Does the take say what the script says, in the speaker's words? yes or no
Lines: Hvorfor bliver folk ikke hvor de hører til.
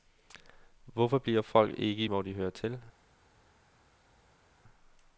yes